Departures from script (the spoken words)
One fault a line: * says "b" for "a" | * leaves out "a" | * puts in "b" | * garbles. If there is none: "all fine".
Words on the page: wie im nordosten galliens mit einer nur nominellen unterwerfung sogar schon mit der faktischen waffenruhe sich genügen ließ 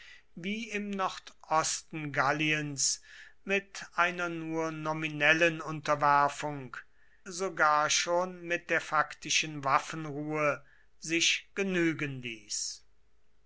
all fine